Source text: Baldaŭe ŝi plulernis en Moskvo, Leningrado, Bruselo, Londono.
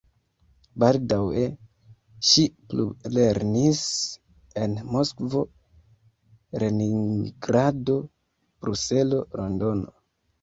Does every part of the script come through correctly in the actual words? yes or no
yes